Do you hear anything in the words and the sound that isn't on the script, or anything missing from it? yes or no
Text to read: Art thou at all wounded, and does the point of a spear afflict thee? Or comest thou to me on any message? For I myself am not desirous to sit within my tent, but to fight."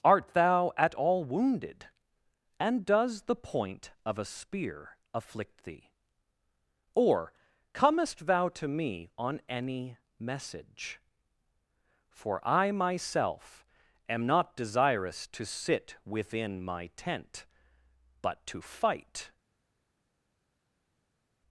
no